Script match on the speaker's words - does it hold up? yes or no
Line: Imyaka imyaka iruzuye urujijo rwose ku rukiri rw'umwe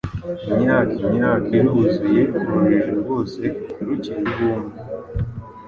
yes